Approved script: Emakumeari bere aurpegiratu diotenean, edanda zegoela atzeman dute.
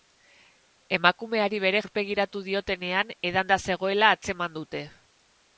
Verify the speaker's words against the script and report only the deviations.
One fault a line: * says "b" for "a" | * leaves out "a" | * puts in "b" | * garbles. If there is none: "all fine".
all fine